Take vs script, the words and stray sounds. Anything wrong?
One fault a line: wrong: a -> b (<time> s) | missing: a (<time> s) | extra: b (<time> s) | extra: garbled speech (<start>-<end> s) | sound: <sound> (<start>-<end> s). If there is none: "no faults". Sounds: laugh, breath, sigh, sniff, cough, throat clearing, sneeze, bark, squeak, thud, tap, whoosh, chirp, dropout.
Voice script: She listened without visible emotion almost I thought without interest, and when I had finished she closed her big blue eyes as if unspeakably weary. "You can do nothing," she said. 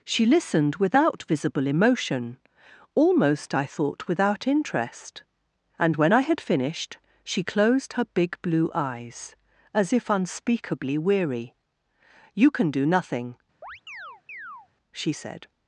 sound: chirp (13.6-14.7 s)